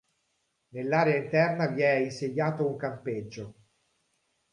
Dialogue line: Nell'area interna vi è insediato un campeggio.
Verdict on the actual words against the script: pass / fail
pass